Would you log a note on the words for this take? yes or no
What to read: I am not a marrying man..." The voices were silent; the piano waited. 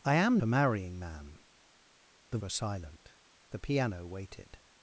yes